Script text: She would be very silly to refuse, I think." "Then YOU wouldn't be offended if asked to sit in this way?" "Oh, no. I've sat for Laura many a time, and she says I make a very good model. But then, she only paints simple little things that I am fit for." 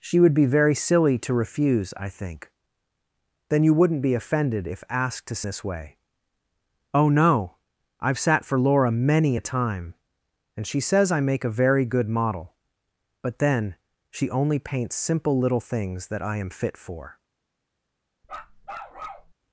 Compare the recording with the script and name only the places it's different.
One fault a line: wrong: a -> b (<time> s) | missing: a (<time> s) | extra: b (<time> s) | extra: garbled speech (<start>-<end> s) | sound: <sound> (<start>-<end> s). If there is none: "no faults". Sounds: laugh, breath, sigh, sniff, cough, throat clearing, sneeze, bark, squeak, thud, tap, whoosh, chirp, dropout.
missing: sit in (5.4 s)
sound: bark (18.2-19.3 s)